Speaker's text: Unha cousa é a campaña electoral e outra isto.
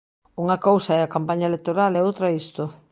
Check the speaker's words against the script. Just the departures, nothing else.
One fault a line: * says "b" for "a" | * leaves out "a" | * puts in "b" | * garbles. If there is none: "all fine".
all fine